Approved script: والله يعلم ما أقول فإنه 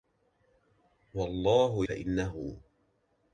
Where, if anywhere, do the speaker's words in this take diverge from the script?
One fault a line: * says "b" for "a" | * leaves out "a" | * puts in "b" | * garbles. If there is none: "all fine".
* leaves out "يعلم ما أقول"